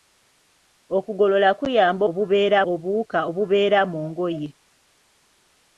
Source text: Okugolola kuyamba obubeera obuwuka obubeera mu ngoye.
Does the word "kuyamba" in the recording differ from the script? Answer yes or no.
no